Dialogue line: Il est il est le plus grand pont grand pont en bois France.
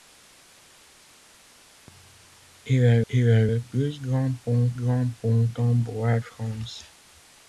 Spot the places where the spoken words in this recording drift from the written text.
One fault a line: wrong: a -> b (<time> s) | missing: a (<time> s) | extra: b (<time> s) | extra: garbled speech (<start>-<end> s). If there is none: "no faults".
no faults